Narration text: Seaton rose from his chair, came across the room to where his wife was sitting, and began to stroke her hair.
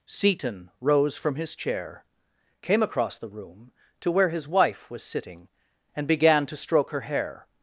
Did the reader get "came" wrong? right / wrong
right